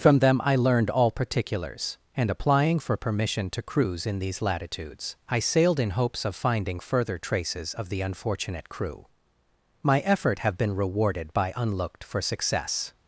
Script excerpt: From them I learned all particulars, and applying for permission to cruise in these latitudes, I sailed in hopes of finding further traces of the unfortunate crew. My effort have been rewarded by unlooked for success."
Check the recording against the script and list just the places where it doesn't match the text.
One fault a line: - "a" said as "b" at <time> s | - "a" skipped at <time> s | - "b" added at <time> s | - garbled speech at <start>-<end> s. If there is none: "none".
none